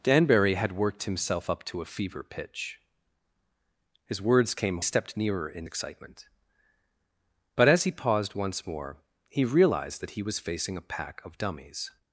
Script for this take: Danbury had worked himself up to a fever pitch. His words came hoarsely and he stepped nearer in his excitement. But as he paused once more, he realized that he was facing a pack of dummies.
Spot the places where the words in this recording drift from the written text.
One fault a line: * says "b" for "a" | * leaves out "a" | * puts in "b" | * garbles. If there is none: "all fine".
* leaves out "hoarsely and he"
* leaves out "his"